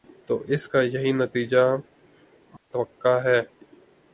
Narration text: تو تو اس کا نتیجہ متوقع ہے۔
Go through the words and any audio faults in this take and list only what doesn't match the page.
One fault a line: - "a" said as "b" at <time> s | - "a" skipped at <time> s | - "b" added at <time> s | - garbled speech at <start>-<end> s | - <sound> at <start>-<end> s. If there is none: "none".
- "تو" skipped at 0.4 s
- "یہی" added at 0.8 s
- dropout at 2.6-2.7 s